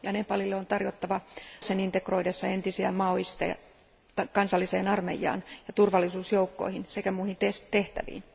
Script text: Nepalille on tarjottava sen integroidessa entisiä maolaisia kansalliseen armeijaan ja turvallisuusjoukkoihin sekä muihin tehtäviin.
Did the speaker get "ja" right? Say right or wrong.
right